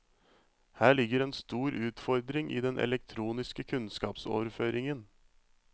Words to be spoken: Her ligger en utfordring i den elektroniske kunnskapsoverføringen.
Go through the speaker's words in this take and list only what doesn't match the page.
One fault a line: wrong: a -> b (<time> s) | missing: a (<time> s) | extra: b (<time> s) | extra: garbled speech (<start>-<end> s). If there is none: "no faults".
extra: stor (1.3 s)